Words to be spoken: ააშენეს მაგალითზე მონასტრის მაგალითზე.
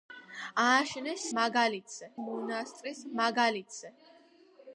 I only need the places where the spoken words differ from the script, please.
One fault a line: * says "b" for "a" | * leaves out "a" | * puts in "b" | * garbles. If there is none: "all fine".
all fine